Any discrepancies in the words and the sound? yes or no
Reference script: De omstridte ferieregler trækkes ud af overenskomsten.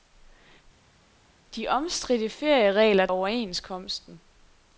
yes